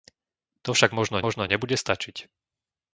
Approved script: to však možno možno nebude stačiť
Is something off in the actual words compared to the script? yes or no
no